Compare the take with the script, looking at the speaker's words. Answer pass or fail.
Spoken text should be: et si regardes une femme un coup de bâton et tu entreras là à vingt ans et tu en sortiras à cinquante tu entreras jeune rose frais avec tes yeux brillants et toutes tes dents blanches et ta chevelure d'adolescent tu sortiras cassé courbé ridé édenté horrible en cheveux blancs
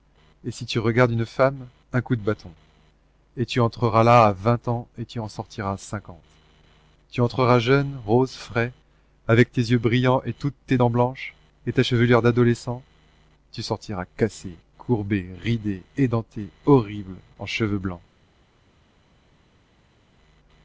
fail